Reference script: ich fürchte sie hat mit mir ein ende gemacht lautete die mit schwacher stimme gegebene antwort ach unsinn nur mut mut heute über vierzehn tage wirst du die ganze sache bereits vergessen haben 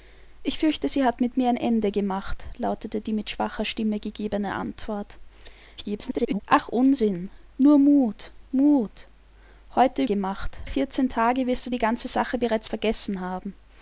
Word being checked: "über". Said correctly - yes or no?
no